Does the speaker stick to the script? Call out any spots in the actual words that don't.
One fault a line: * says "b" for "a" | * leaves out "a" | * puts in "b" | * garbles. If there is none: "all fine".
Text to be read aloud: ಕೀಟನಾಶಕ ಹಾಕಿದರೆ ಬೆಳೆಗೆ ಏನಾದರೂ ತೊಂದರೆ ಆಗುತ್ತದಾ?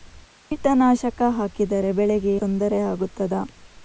* leaves out "ಏನಾದರೂ"